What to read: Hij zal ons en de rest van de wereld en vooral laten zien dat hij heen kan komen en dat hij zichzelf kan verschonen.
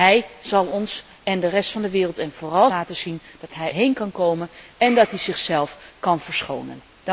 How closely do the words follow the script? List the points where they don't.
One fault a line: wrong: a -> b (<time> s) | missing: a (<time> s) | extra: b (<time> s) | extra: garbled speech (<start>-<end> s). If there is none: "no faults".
no faults